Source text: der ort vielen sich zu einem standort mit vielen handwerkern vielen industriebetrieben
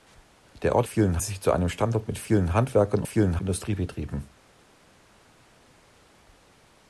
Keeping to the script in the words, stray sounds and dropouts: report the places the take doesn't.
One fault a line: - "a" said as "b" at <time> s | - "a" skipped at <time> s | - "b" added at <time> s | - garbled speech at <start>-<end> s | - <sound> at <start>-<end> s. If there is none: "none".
none